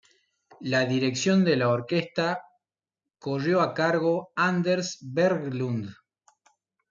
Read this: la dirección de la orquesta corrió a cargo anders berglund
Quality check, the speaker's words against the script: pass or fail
pass